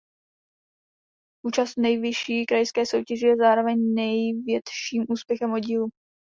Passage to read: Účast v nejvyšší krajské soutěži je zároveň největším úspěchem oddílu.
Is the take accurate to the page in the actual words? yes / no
yes